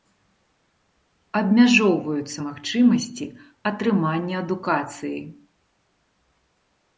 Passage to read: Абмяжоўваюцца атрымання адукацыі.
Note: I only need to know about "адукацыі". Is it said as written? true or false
true